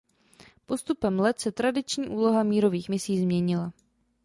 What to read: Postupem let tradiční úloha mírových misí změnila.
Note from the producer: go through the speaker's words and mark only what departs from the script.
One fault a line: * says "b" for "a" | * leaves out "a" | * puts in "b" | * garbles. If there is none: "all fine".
* puts in "se"